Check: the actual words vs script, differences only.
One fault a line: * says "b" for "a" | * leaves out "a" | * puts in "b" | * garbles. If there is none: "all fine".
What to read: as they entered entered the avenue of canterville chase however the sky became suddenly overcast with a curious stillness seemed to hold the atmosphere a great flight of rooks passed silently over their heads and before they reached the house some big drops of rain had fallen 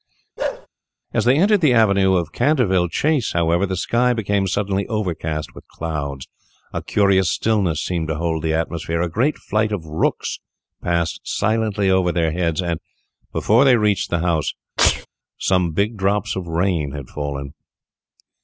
* leaves out "entered"
* puts in "clouds"